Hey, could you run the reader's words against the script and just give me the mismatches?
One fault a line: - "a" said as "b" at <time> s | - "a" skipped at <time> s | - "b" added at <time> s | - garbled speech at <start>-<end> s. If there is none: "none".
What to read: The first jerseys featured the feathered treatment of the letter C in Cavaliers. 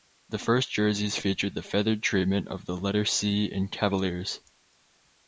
none